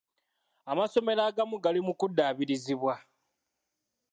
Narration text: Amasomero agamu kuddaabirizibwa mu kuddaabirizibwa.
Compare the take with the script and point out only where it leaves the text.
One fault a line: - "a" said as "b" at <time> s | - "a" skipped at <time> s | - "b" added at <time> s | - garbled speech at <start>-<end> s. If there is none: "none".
- "kuddaabirizibwa" said as "gali" at 1.6 s